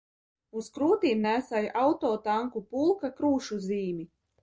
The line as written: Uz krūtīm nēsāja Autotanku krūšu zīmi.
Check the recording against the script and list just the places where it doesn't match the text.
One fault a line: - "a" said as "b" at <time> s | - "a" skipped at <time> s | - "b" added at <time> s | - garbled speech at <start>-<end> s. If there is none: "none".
- "pulka" added at 2.8 s